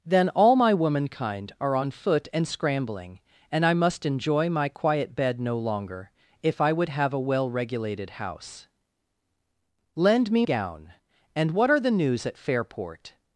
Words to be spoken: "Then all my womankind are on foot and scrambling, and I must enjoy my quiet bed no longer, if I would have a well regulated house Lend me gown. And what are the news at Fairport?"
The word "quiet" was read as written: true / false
true